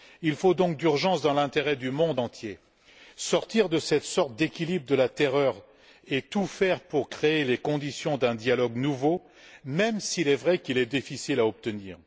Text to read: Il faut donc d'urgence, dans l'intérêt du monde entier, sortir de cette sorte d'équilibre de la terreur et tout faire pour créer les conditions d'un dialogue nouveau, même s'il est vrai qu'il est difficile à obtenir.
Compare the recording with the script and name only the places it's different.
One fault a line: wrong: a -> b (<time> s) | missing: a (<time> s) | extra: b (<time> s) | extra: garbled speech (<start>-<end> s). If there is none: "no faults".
no faults